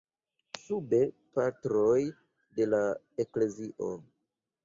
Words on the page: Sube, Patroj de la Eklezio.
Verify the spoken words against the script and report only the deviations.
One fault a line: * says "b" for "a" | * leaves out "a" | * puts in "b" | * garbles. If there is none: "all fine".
all fine